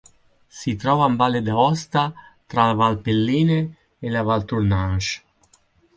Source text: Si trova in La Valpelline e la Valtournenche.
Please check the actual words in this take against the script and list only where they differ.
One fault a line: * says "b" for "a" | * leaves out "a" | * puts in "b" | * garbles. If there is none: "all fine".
* puts in "Valle d'Aosta tra"